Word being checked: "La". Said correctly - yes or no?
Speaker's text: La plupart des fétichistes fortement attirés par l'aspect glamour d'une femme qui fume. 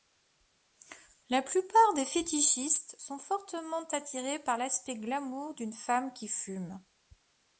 yes